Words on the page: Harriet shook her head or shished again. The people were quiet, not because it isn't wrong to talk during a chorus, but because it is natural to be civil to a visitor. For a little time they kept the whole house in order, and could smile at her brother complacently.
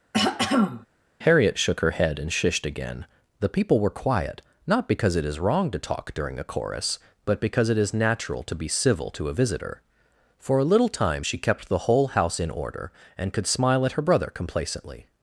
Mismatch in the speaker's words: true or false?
true